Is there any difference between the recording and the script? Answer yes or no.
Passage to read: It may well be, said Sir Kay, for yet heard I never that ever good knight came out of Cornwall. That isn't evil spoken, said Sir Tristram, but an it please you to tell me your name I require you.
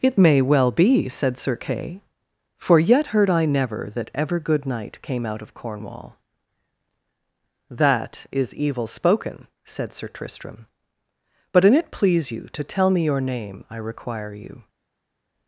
yes